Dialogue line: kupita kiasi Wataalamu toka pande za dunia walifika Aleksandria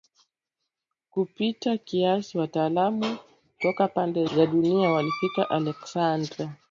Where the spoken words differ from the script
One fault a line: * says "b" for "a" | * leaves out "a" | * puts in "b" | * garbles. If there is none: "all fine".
all fine